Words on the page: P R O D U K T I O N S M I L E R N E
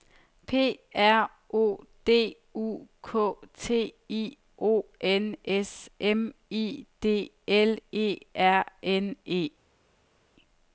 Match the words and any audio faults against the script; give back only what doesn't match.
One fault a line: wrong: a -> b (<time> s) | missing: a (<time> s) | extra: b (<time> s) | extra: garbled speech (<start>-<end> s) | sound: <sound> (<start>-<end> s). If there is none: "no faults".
extra: D (7.0 s)